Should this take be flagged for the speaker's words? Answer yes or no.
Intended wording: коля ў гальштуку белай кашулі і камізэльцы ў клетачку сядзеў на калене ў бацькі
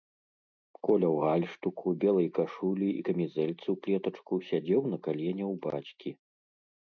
no